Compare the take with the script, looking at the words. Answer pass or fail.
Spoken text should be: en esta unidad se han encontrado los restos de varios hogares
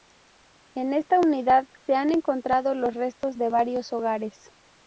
pass